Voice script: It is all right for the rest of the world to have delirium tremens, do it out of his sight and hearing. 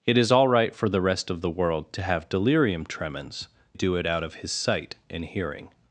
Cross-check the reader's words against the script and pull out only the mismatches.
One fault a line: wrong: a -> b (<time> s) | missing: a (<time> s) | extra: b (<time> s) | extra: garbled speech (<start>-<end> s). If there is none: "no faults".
no faults